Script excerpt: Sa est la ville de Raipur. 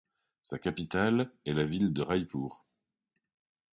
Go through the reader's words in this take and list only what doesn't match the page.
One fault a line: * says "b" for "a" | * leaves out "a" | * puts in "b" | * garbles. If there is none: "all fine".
* puts in "capitale"